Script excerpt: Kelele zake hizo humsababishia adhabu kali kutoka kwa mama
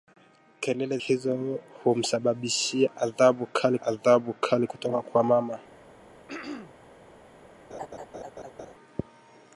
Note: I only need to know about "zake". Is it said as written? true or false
false